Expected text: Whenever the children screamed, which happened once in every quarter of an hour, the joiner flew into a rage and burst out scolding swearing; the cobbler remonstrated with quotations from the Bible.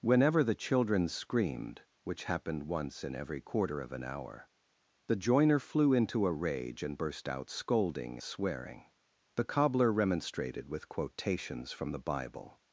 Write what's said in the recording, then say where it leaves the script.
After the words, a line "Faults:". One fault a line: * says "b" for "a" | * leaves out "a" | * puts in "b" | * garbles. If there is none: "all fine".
Whenever the children screamed, which happened once in every quarter of an hour, the joiner flew into a rage and burst out scolding swearing; the cobbler remonstrated with quotations from the Bible.
Faults:
all fine